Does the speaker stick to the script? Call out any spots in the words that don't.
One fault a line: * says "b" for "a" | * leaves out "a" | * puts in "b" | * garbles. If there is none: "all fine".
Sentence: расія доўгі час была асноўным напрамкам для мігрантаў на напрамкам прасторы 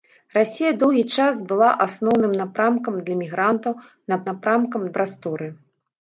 all fine